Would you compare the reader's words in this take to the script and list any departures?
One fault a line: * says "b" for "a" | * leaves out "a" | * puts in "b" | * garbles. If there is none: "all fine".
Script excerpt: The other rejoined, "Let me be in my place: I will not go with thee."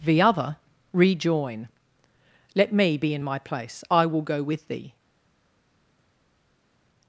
* says "rejoin" for "rejoined"
* leaves out "not"